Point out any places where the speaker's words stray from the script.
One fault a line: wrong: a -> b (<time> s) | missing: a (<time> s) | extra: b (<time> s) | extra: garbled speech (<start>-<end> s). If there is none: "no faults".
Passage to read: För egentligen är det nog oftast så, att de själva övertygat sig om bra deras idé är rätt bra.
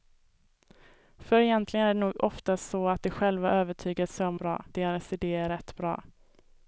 no faults